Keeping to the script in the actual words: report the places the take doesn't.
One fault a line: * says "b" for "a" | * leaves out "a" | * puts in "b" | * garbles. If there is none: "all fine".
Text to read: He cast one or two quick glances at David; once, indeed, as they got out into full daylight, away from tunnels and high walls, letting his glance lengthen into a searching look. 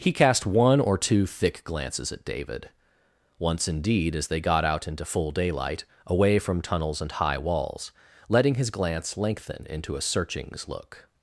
* says "thick" for "quick"
* says "searchings" for "searching"